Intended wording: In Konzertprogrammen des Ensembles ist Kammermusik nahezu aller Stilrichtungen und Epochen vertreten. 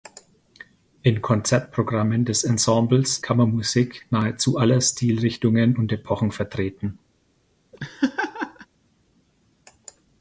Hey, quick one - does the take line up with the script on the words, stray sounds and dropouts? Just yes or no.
no